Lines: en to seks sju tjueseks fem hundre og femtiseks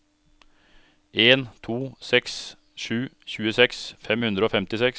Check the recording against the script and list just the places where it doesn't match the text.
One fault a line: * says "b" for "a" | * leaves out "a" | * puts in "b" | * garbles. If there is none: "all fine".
all fine